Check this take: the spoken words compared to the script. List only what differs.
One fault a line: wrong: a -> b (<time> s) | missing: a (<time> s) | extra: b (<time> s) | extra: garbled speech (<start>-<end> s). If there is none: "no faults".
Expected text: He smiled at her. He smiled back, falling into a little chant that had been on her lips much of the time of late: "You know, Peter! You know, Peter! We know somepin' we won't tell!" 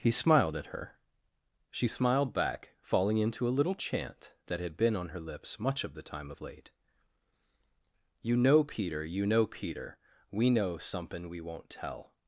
wrong: He -> She (1.7 s)